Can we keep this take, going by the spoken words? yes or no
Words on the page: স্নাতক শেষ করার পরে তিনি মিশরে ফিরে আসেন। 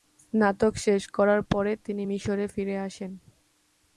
yes